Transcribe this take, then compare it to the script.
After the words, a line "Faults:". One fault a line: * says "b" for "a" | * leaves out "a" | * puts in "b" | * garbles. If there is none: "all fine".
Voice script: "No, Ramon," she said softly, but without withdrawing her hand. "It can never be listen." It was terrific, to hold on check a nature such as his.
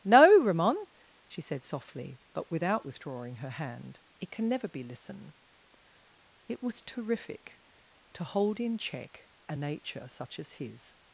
"No, Ramon," she said softly, but without withdrawing her hand. "It can never be listen." It was terrific, to hold in check a nature such as his.
Faults:
* says "in" for "on"